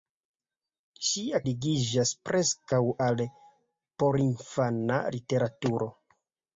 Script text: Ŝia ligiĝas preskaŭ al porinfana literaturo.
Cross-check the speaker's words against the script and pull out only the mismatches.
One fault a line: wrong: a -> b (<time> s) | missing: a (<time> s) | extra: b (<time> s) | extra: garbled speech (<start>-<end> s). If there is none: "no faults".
no faults